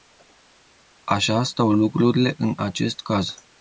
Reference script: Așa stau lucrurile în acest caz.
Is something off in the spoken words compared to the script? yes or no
no